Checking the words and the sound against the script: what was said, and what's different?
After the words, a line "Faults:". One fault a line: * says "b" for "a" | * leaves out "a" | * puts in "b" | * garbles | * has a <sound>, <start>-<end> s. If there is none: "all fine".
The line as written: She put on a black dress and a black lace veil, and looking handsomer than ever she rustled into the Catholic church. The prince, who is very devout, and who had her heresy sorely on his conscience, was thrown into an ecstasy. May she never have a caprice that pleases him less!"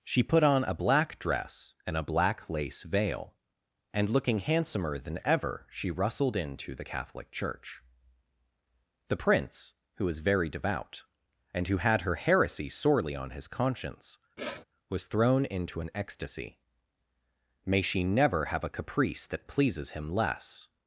She put on a black dress and a black lace veil, and looking handsomer than ever she rustled into the Catholic church. The prince, who was very devout, and who had her heresy sorely on his conscience, was thrown into an ecstasy. May she never have a caprice that pleases him less!"
Faults:
* says "was" for "is"
* has a sniff, 14.4-14.6 s